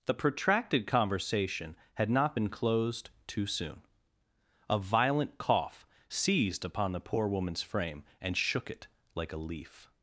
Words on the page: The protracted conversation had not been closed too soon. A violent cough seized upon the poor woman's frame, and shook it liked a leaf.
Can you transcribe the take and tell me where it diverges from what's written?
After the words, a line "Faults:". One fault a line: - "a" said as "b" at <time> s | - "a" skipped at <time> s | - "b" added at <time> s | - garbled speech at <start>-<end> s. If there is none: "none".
The protracted conversation had not been closed too soon. A violent cough seized upon the poor woman's frame, and shook it like a leaf.
Faults:
- "liked" said as "like" at 9.1 s